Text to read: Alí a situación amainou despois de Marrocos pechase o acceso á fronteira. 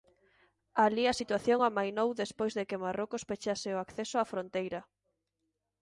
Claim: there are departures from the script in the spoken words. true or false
true